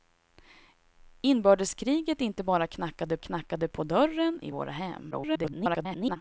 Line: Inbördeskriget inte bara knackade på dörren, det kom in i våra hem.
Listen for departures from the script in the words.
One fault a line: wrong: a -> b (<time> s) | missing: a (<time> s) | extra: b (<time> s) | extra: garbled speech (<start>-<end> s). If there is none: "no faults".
extra: knackade (3.2 s)
missing: det kom in (4.4 s)
extra: garbled speech (5.1-6.2 s)